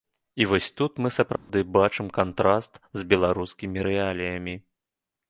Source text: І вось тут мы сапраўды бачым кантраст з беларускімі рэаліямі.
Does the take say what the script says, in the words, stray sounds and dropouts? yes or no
no